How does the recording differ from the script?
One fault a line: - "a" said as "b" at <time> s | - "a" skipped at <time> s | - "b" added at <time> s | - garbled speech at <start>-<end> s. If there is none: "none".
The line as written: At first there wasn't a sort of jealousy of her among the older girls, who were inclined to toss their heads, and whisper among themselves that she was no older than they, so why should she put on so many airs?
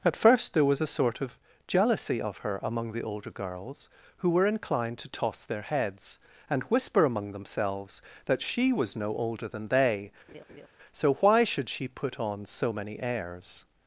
- "wasn't" said as "was" at 0.7 s